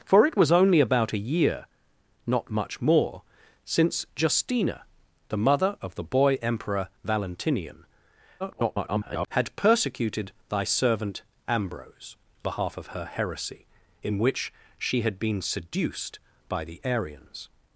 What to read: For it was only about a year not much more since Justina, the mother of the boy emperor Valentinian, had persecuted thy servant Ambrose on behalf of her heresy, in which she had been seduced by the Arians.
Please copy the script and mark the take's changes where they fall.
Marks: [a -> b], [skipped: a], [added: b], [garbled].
For it was only about a year not much more since Justina, the mother of the boy emperor Valentinian, [garbled] had persecuted thy servant Ambrose [skipped: on] behalf of her heresy, in which she had been seduced by the Arians.